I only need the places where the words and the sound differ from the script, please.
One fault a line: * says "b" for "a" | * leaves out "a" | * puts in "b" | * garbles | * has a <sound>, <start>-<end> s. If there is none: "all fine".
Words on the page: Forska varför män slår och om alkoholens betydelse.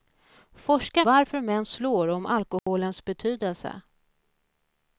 * has a dropout, 2.6-2.7 s